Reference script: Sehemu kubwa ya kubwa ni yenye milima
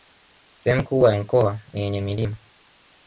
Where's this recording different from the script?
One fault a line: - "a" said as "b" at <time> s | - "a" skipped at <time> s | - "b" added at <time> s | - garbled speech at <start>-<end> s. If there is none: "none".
- "kubwa" said as "mkoa" at 1.2 s